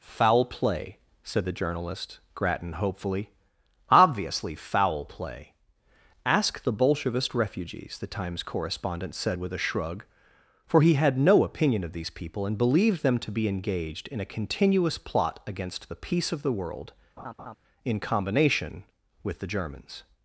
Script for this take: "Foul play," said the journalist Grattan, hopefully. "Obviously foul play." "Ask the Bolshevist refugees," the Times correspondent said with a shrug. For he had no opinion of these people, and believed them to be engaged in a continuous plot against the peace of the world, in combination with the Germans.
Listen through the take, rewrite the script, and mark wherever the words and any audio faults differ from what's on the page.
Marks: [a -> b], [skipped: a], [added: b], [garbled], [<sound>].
"Foul play," said the journalist Grattan, hopefully. "Obviously foul play." "Ask the Bolshevist refugees," the Times correspondent said with a shrug. For he had no opinion of these people, and believed them to be engaged in a continuous plot against the peace of the world, [laugh] in combination with the Germans.